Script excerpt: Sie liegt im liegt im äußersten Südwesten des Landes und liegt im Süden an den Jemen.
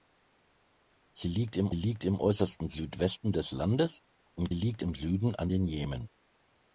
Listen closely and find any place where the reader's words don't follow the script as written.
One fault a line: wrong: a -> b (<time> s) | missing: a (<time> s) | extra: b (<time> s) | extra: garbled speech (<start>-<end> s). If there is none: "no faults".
no faults